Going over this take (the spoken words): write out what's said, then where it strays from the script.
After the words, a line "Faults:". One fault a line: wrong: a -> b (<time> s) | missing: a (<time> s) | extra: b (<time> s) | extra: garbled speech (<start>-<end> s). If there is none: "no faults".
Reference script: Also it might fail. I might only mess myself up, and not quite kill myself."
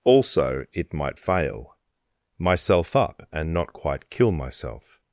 Also it might fail. myself up, and not quite kill myself."
Faults:
missing: I might only mess (1.7 s)